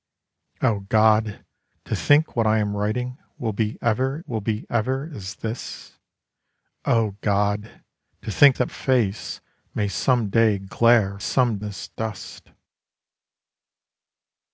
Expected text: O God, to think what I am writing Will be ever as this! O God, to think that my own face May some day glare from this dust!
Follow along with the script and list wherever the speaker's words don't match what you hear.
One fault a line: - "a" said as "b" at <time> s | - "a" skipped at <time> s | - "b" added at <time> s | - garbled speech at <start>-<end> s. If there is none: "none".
- "Will be ever" added at 4.3 s
- "my own" skipped at 8.7 s
- "from" said as "some" at 11.2 s